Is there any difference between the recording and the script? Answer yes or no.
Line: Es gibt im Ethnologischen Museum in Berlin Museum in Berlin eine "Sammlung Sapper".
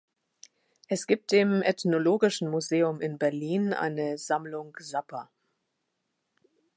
yes